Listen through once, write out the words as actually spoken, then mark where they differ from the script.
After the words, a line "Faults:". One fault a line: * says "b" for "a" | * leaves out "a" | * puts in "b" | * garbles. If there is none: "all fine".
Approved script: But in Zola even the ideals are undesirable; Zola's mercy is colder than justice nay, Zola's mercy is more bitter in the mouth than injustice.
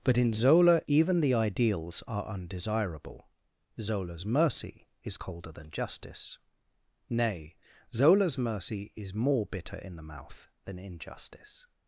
But in Zola even the ideals are undesirable; Zola's mercy is colder than justice nay, Zola's mercy is more bitter in the mouth than injustice.
Faults:
all fine